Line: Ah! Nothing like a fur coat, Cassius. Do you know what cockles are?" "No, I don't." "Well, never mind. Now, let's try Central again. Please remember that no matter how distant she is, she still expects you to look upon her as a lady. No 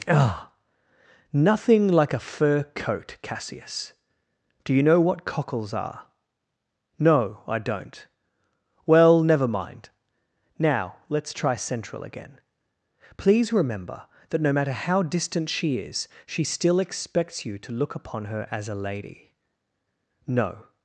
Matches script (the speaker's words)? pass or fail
pass